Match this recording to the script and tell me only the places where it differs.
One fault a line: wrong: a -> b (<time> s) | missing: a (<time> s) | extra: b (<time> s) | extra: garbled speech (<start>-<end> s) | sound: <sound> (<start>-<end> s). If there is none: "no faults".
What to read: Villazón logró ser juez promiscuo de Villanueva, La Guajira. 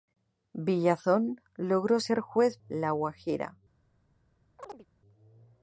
missing: promiscuo de Villanueva (2.6 s)
sound: chirp (4.6-4.9 s)